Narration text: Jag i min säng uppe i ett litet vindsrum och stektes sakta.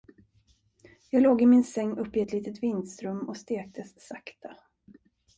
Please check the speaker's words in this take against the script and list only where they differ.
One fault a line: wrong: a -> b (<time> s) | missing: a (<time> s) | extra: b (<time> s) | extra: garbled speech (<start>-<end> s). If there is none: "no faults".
extra: låg (1.2 s)